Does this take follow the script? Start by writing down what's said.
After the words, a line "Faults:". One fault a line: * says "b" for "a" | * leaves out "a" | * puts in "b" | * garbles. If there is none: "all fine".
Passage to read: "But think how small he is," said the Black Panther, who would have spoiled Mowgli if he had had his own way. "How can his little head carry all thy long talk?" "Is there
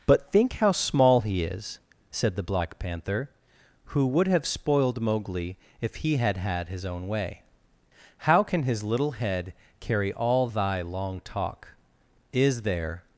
"But think how small he is," said the Black Panther, who would have spoiled Mowgli if he had had his own way. "How can his little head carry all thy long talk?" "Is there
Faults:
all fine